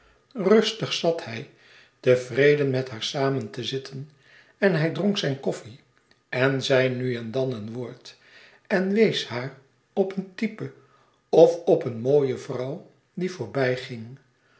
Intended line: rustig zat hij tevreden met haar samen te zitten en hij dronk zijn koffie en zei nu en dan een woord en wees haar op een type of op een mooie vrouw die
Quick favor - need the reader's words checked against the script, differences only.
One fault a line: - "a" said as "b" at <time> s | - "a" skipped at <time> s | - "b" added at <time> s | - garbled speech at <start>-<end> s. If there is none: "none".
none